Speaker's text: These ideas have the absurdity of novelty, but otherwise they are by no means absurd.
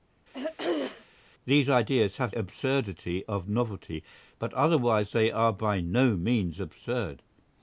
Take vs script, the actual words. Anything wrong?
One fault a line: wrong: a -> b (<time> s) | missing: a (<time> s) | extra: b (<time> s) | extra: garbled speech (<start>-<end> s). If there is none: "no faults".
missing: the (2.4 s)